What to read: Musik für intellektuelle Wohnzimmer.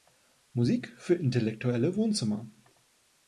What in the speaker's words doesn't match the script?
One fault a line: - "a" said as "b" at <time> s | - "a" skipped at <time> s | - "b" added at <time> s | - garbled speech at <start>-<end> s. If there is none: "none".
none